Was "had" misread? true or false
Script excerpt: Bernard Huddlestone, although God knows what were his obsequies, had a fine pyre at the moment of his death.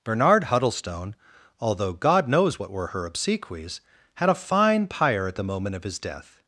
false